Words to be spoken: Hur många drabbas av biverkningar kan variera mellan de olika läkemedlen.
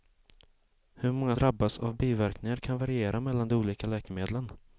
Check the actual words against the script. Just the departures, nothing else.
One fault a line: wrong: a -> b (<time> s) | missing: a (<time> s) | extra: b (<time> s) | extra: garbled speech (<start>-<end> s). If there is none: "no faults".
no faults